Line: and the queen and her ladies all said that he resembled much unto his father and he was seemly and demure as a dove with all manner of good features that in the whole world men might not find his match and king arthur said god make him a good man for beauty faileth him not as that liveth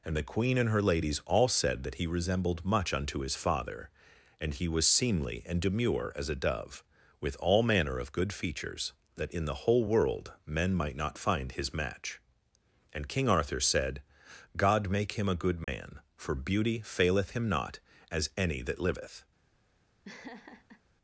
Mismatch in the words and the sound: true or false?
true